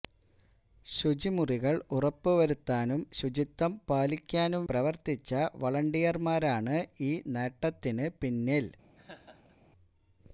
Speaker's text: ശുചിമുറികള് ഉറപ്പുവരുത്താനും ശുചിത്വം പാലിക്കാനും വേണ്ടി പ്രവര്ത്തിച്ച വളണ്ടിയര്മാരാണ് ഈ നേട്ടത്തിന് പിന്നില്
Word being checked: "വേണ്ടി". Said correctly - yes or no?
no